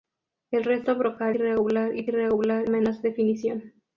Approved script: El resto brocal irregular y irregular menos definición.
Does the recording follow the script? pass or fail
pass